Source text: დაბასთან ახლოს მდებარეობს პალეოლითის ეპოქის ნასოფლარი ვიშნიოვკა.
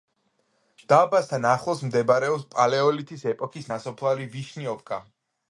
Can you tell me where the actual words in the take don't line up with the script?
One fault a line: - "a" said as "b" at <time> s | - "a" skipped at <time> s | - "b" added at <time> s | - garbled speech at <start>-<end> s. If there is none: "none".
none